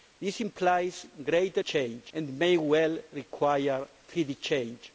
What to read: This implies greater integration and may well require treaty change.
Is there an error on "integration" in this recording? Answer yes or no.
yes